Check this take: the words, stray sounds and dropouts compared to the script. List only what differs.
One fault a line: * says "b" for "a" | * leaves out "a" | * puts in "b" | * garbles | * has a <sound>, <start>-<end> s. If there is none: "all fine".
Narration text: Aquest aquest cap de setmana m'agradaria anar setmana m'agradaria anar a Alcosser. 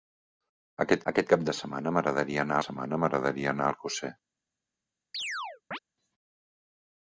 * has a chirp, 5.1-5.8 s